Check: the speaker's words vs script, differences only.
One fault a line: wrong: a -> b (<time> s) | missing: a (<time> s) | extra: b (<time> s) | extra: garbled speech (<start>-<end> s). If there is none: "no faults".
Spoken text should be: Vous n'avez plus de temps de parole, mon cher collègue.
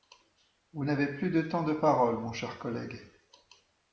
no faults